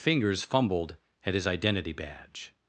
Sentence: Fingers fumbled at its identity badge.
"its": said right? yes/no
no